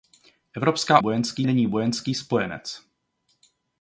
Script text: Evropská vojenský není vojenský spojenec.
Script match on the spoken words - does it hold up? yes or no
yes